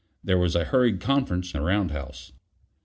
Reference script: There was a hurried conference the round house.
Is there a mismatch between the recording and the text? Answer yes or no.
no